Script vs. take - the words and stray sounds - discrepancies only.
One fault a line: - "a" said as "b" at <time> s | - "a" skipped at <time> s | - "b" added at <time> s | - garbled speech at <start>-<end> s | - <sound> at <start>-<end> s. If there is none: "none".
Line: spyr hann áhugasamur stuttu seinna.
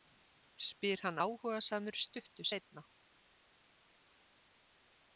none